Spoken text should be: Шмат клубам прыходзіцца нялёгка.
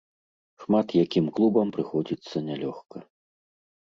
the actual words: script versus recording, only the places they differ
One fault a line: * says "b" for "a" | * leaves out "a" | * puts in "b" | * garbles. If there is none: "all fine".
* puts in "якім"